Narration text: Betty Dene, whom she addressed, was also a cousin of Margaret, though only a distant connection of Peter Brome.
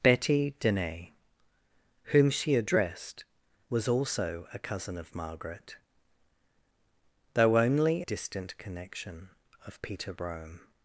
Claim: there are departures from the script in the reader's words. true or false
true